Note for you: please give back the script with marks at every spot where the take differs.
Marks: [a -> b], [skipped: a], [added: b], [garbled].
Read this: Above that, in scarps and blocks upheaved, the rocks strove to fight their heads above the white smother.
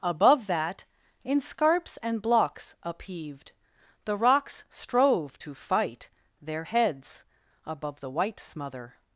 Above that, in scarps and blocks upheaved, the rocks strove to fight their heads above the white smother.